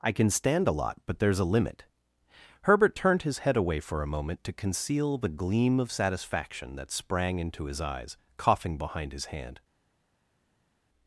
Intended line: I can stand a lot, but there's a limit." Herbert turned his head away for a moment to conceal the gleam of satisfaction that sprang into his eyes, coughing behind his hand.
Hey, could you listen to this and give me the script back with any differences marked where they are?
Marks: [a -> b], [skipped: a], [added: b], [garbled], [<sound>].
I can stand a lot, but there's a limit." Herbert turned his head away for a moment to conceal the gleam of satisfaction that sprang into his eyes, coughing behind his hand.